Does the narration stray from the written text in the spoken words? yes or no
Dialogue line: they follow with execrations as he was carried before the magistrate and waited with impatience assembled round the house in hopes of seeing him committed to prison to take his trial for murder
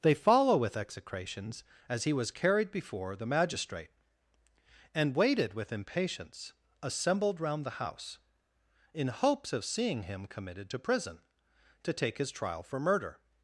no